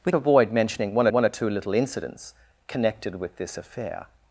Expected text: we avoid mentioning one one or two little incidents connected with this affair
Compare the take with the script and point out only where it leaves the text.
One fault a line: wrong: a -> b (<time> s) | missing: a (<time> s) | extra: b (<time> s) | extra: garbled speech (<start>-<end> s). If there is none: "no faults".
no faults